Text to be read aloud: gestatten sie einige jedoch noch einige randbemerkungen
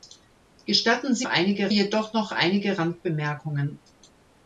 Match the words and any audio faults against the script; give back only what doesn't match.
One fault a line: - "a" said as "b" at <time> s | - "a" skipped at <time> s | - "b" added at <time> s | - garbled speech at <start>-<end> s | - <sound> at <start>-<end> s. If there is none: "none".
none